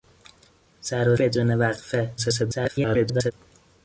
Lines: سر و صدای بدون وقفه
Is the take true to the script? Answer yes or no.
no